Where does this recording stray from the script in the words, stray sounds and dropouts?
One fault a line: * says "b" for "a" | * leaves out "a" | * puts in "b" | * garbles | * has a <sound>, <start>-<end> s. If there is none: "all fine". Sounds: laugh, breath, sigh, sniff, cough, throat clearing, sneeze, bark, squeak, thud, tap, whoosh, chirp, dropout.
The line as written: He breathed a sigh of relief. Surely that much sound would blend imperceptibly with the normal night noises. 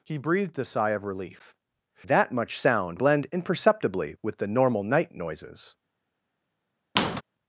* leaves out "Surely"
* leaves out "would"
* has a squeak, 7.0-7.2 s